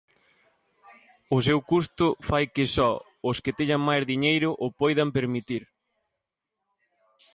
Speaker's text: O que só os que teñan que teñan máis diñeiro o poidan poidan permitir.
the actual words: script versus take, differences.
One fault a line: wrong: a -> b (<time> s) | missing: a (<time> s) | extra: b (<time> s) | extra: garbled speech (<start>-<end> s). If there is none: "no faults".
extra: seu custo fai (1.5 s)
missing: que teñan (3.8 s)
missing: poidan (5.1 s)